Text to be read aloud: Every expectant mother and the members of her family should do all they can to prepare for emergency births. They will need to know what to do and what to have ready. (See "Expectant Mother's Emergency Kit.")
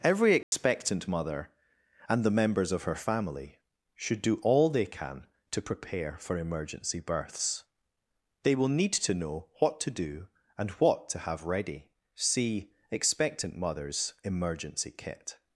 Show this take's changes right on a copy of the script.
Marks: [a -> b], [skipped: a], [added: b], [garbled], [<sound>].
Every expectant [dropout] mother and the members of her family should do all they can to prepare for emergency births. They will need to know what to do and what to have ready. (See "Expectant Mother's Emergency Kit.")